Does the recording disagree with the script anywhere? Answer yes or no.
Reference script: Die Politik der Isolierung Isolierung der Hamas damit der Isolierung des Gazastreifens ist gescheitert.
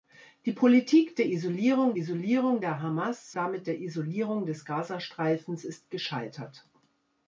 no